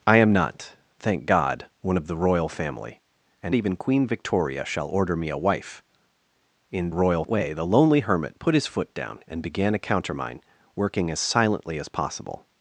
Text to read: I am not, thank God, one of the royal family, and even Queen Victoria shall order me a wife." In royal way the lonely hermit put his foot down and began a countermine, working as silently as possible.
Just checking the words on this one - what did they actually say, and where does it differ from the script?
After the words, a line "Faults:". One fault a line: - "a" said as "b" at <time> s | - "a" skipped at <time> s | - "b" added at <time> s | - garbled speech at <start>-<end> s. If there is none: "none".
I am not, thank God, one of the royal family, and even Queen Victoria shall order me a wife." In royal way the lonely hermit put his foot down and began a countermine, working as silently as possible.
Faults:
none